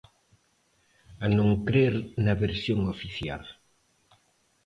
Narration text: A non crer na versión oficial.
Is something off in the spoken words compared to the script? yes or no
no